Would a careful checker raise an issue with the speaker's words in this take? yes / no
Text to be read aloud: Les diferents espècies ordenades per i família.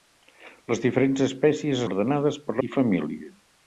no